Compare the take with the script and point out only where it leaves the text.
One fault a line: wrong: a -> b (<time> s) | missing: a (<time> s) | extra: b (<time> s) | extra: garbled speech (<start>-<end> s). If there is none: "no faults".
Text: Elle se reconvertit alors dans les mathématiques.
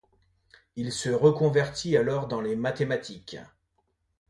wrong: Elle -> Il (0.8 s)